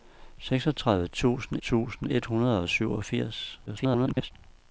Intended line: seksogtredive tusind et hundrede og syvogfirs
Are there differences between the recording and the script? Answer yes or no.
yes